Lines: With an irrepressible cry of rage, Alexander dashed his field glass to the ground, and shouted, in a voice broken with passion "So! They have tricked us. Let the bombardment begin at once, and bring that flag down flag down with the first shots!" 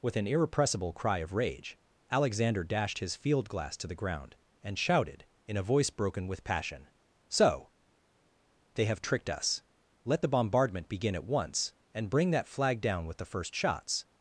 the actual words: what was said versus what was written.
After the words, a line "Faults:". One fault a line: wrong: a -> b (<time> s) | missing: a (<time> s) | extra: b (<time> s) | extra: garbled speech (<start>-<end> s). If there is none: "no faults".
With an irrepressible cry of rage, Alexander dashed his field glass to the ground, and shouted, in a voice broken with passion "So! They have tricked us. Let the bombardment begin at once, and bring that flag down with the first shots!"
Faults:
missing: flag down (13.1 s)